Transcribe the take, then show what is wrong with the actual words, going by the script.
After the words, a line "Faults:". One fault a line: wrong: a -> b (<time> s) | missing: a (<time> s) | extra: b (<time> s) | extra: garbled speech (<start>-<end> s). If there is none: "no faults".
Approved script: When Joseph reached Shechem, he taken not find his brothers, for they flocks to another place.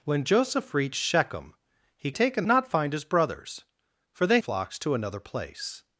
When Joseph reached Shechem, he taken not find his brothers, for they flocks to another place.
Faults:
no faults